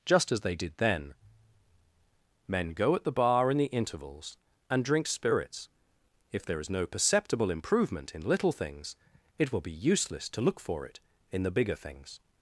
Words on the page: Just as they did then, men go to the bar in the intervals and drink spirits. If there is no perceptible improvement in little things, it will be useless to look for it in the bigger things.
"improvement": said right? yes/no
yes